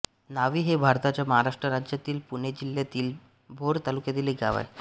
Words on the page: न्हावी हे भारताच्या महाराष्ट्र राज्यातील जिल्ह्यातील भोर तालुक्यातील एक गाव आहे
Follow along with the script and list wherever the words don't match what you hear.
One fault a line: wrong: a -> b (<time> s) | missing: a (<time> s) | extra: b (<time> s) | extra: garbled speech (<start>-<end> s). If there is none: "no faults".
extra: पुणे (2.3 s)